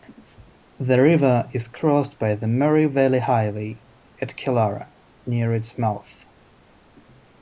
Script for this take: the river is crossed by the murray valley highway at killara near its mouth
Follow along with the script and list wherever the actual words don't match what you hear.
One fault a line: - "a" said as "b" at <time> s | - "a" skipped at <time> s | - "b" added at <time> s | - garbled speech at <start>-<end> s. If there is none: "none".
none